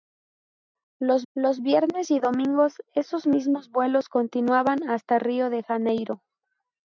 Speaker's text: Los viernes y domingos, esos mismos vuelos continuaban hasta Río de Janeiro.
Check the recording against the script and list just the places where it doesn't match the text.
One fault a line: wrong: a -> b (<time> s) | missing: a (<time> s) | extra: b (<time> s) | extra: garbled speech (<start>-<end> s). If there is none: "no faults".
extra: los (1.3 s)